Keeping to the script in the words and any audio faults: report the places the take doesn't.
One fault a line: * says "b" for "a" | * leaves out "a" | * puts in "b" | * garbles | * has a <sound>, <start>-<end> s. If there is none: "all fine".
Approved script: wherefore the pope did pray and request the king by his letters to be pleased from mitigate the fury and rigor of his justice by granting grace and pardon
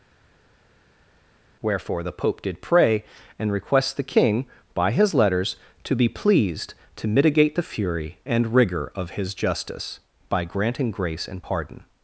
* says "to" for "from"